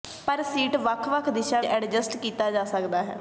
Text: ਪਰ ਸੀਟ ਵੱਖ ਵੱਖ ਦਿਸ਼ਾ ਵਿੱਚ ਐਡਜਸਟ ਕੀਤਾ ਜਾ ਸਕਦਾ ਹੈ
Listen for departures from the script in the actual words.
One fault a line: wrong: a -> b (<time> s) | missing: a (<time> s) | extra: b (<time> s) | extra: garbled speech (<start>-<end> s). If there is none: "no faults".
missing: ਵਿੱਚ (1.6 s)